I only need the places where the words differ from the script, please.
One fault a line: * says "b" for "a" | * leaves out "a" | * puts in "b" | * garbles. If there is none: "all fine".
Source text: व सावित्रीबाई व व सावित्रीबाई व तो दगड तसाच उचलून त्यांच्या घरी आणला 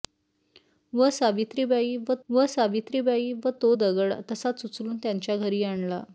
all fine